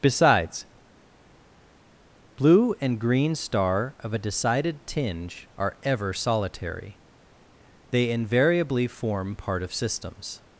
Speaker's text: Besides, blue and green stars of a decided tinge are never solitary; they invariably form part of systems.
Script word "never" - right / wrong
wrong